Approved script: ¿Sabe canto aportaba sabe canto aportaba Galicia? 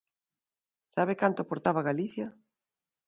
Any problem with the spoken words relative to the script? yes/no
yes